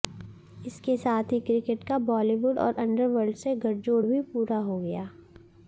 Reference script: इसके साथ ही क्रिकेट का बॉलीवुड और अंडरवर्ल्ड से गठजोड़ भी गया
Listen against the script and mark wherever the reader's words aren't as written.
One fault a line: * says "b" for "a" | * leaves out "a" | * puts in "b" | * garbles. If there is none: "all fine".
* puts in "पूरा हो"